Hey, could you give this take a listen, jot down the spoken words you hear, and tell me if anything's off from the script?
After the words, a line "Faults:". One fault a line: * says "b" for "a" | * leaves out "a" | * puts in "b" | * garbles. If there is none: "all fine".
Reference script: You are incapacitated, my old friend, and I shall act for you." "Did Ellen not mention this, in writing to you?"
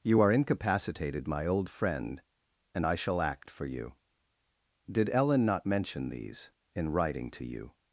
You are incapacitated, my old friend, and I shall act for you." "Did Ellen not mention these, in writing to you?"
Faults:
* says "these" for "this"